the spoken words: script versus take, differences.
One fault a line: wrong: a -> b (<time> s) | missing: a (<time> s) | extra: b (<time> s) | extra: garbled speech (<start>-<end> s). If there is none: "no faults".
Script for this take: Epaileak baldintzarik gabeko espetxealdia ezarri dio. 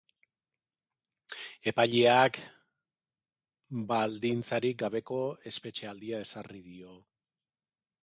no faults